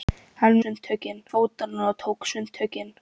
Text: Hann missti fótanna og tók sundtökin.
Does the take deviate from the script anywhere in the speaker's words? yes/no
yes